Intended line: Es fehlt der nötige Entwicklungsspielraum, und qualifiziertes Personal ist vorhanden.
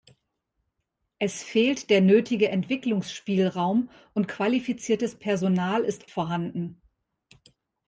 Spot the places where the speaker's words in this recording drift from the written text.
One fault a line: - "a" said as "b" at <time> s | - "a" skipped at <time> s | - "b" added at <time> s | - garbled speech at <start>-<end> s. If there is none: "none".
none